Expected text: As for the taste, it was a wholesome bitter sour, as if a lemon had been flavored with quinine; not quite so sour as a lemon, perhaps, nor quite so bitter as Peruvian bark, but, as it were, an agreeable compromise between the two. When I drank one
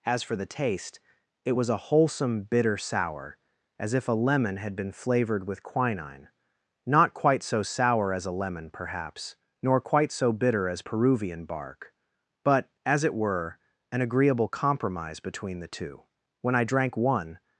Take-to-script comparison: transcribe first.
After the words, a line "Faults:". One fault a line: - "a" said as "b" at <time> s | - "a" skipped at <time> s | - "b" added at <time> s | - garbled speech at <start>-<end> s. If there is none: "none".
As for the taste, it was a wholesome bitter sour, as if a lemon had been flavored with quinine; not quite so sour as a lemon, perhaps, nor quite so bitter as Peruvian bark, but, as it were, an agreeable compromise between the two. When I drank one
Faults:
none